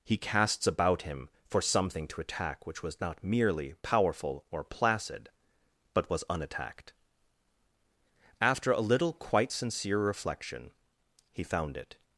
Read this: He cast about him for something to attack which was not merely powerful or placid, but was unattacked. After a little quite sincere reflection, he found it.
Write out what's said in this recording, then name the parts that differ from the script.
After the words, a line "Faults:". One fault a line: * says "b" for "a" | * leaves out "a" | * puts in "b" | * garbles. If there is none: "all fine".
He casts about him for something to attack which was not merely powerful or placid, but was unattacked. After a little quite sincere reflection, he found it.
Faults:
* says "casts" for "cast"